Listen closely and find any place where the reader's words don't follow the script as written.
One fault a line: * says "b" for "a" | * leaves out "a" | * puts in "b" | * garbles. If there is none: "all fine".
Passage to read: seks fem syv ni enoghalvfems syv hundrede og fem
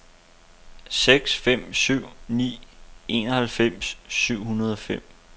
all fine